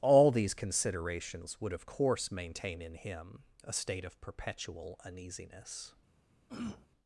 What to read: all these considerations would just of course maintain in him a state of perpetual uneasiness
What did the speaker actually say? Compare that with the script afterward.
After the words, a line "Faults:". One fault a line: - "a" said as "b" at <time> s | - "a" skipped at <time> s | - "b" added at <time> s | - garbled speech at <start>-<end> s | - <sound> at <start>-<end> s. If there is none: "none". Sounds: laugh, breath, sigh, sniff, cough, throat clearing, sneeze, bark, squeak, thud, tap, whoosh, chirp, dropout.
all these considerations would of course maintain in him a state of perpetual uneasiness
Faults:
- "just" skipped at 1.7 s
- throat clearing at 6.5-6.9 s